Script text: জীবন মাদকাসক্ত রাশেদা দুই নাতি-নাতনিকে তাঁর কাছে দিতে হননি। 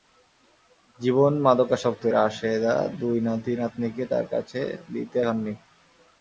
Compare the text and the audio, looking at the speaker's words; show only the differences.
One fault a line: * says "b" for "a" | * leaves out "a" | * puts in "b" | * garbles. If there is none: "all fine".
all fine